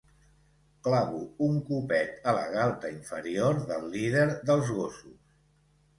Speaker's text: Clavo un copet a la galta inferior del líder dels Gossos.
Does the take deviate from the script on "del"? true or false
false